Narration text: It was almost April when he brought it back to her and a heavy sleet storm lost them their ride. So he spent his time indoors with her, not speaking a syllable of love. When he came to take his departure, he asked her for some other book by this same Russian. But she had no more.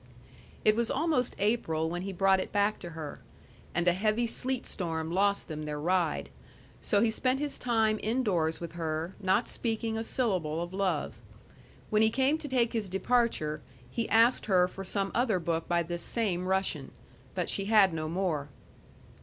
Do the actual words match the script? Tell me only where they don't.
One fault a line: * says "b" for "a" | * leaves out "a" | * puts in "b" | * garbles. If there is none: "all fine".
all fine